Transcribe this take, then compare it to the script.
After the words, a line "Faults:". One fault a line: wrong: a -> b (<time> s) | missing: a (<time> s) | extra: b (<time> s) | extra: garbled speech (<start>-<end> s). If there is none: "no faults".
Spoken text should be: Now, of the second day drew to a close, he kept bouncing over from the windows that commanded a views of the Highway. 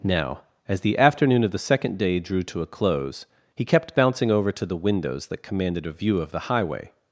Now, as the afternoon of the second day drew to a close, he kept bouncing over to the windows that commanded a view of the Highway.
Faults:
extra: as the afternoon (0.7 s)
wrong: from -> to (4.5 s)
wrong: views -> view (5.9 s)